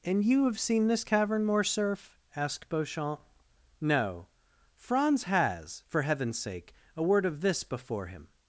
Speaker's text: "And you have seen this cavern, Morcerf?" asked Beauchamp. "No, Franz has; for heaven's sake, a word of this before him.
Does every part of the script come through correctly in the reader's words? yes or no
yes